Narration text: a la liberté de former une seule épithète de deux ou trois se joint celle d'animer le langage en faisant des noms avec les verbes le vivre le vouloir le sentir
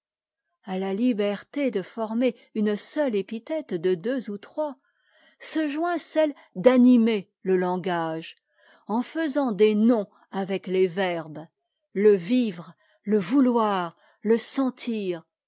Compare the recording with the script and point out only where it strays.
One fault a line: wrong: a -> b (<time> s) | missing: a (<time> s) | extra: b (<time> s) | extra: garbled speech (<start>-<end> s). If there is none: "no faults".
no faults